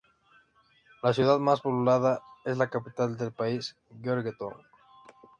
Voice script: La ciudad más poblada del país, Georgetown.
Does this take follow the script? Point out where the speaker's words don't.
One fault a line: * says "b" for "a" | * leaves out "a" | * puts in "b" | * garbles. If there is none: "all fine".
* puts in "es la capital"